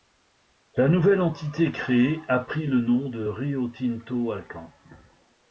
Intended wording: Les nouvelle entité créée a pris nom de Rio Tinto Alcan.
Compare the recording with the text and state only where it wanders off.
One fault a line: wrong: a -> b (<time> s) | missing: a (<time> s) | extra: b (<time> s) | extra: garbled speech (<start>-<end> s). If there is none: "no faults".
wrong: Les -> La (0.8 s)
extra: le (2.6 s)